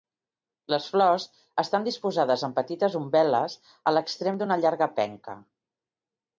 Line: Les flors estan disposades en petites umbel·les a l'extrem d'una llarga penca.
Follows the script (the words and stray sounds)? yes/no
yes